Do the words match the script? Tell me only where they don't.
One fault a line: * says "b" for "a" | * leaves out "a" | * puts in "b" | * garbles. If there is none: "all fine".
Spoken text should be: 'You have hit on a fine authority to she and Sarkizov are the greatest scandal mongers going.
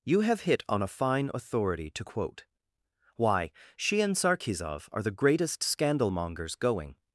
* puts in "quote Why"